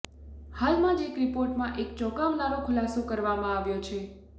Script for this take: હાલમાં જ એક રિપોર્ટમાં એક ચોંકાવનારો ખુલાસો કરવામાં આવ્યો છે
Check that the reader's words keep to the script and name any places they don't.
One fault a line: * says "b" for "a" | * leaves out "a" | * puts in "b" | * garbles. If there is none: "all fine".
all fine